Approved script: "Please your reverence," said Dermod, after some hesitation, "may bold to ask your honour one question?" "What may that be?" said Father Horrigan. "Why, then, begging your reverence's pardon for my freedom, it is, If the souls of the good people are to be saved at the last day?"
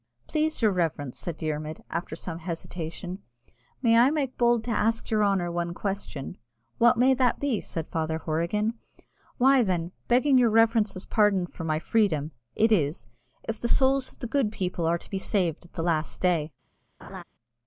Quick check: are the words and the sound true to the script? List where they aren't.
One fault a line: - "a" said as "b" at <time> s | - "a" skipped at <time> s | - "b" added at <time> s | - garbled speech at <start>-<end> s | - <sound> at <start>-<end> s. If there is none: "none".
- "I make" added at 4.0 s
- laugh at 17.0-17.2 s